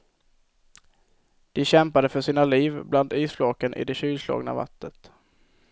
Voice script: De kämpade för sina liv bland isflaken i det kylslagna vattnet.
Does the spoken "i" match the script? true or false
true